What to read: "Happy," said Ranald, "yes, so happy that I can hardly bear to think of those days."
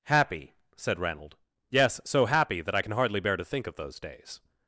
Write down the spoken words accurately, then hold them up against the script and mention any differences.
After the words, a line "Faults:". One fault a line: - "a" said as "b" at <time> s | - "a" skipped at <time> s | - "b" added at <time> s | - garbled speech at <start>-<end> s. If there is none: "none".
"Happy," said Ranald, "yes, so happy that I can hardly bear to think of those days."
Faults:
none